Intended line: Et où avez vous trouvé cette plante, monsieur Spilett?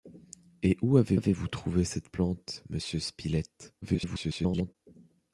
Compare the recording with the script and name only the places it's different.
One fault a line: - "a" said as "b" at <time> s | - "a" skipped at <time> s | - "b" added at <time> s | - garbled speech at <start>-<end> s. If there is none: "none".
- "avez" added at 1.1 s
- garbled speech at 3.8-4.7 s